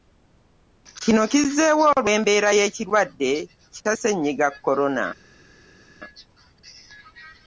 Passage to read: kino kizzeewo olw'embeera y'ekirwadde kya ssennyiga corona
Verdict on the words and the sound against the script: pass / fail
pass